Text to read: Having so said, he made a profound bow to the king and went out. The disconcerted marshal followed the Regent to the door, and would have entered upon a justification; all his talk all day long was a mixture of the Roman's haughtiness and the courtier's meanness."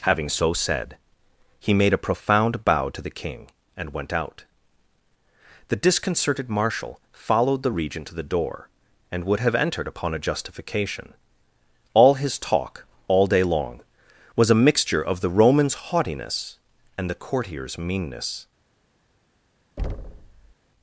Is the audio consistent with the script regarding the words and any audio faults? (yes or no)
no